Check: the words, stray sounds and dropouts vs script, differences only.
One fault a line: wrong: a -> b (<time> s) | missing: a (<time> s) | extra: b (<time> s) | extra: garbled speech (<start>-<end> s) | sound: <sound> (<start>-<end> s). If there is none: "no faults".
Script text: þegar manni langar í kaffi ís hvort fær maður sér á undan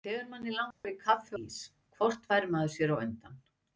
sound: dropout (0.7-0.8 s)